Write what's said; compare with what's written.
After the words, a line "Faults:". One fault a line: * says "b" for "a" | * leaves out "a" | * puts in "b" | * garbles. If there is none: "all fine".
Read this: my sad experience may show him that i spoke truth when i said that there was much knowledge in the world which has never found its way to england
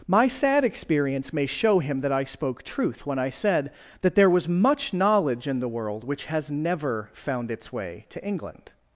my sad experience may show him that i spoke truth when i said that there was much knowledge in the world which has never found its way to england
Faults:
all fine